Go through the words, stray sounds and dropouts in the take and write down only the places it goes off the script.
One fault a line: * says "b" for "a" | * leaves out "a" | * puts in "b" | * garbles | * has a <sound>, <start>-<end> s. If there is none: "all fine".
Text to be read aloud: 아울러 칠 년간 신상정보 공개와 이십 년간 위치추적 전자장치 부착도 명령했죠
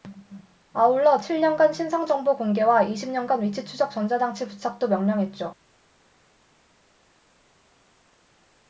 all fine